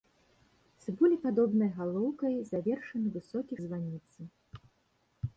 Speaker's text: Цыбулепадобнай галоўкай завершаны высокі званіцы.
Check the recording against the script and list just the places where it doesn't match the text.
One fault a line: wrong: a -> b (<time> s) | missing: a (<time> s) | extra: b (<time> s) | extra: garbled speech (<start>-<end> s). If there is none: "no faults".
no faults